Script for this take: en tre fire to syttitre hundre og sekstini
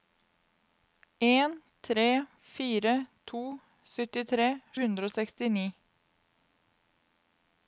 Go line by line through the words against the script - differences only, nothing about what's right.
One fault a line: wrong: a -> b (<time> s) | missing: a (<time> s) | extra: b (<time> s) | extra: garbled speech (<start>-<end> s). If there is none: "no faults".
no faults